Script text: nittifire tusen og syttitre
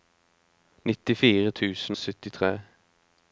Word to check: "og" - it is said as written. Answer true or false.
false